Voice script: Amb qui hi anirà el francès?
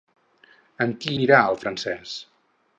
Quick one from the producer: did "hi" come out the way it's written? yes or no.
no